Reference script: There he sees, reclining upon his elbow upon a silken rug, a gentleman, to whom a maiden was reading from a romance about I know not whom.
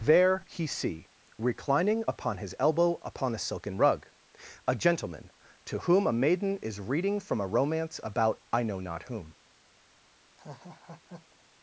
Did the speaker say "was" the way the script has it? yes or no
no